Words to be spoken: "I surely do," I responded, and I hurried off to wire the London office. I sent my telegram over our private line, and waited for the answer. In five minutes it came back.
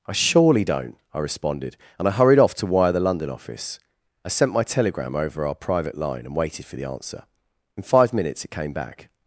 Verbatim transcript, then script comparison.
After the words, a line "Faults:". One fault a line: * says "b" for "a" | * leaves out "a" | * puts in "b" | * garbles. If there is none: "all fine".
"I surely don't," I responded, and I hurried off to wire the London office. I sent my telegram over our private line, and waited for the answer. In five minutes it came back.
Faults:
* says "don't" for "do"